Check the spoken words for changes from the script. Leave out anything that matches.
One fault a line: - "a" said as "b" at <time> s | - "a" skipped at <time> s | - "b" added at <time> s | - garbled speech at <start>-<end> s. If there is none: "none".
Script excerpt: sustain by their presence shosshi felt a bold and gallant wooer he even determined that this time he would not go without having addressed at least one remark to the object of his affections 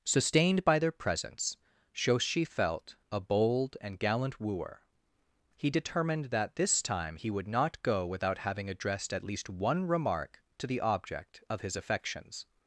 - "sustain" said as "sustained" at 0.0 s
- "even" skipped at 5.7 s